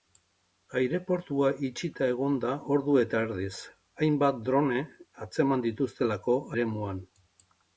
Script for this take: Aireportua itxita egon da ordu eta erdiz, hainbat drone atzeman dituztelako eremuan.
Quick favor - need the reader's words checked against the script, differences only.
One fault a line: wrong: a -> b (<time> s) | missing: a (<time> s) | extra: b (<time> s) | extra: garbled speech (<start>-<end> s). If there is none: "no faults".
no faults